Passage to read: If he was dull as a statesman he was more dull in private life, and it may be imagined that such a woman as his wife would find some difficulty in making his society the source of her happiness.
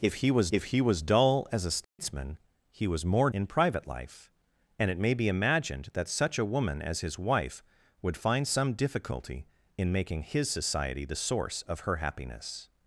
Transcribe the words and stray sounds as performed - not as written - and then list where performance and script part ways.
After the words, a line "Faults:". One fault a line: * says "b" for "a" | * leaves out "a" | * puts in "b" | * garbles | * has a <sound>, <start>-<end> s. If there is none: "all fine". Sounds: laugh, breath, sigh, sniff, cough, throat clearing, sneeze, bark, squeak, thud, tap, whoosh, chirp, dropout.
If he was if he was dull as a statesman he was more in private life, and it may be imagined that such a woman as his wife would find some difficulty in making his society the source of her happiness.
Faults:
* puts in "if he was"
* has a dropout, 1.8-2.0 s
* leaves out "dull"